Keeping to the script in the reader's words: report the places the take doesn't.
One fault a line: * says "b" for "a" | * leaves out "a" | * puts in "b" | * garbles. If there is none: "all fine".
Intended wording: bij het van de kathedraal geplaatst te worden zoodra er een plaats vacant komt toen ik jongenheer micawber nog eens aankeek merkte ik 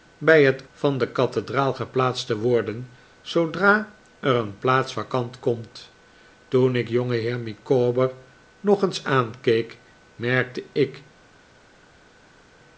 all fine